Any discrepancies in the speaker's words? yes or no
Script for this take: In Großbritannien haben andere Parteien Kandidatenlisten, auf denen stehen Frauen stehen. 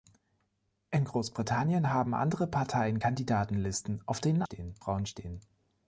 no